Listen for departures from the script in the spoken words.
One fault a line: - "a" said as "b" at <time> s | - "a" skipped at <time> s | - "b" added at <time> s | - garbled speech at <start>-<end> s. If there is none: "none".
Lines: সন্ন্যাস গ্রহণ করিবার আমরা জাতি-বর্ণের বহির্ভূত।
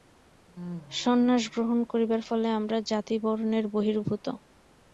- "ফলে" added at 2.3 s